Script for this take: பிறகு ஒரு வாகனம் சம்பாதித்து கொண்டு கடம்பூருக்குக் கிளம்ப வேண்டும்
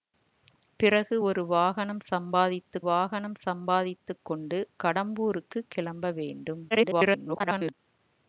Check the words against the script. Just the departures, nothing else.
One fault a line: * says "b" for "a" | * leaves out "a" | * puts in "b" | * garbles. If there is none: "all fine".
* puts in "வாகனம் சம்பாதித்து"
* garbles